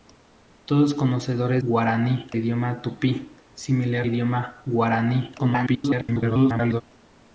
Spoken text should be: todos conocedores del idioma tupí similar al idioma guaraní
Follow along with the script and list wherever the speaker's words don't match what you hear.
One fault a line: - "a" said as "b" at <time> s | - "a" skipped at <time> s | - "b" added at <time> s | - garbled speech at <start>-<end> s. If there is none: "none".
- "del" said as "guaraní" at 1.6 s
- "al" skipped at 4.1 s
- garbled speech at 5.4-6.8 s